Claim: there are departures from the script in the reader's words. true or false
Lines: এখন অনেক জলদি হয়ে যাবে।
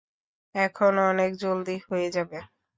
false